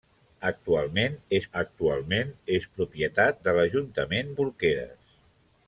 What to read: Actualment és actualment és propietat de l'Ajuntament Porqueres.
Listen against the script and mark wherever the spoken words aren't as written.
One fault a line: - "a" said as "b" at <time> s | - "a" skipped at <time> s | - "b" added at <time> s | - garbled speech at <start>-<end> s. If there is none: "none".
none